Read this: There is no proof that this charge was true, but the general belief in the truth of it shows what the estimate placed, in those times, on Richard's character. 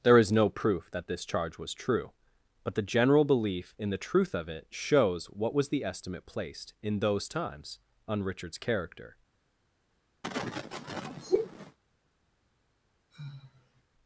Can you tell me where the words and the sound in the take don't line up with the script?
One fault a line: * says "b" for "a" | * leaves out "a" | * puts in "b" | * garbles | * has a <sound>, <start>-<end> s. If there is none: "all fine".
* puts in "was"
* has a sneeze, 10.2-11.8 s
* has a sigh, 13.1-13.8 s